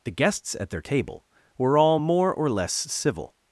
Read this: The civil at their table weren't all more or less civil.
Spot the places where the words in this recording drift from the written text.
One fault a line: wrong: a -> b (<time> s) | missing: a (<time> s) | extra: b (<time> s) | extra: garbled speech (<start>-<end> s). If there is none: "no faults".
wrong: civil -> guests (0.1 s)
wrong: weren't -> were (1.6 s)